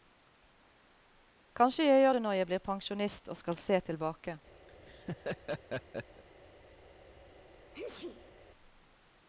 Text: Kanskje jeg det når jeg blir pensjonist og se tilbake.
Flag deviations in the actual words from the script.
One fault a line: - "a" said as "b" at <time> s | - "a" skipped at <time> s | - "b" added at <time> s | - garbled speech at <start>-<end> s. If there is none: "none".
- "gjør" added at 2.0 s
- "skal" added at 3.4 s